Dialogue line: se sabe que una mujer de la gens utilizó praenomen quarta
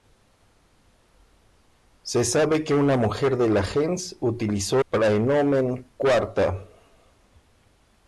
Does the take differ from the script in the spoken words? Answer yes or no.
no